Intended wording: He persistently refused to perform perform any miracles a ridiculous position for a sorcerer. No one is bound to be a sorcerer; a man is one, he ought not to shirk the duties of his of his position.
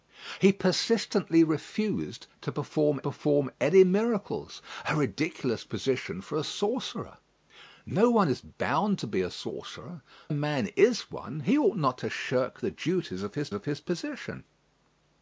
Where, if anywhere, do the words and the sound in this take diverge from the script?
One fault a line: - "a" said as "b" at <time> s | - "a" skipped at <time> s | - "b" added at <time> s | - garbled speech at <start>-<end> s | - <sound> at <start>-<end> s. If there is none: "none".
none